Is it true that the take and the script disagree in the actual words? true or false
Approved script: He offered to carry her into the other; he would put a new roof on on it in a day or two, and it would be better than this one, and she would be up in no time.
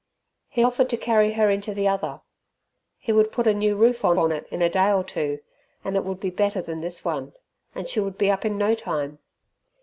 false